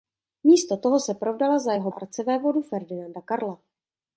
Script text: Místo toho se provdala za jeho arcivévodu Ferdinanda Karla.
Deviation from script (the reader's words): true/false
false